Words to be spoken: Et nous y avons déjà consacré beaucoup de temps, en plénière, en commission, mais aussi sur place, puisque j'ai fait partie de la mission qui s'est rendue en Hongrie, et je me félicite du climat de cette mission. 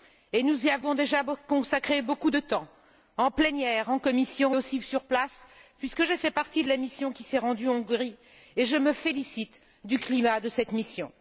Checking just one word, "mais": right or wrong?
wrong